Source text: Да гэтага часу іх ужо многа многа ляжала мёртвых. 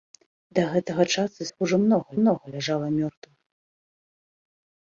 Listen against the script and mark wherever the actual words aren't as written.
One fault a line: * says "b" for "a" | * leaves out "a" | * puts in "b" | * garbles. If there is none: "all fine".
all fine